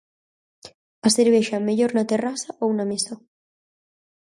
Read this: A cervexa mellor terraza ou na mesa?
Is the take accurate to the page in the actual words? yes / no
no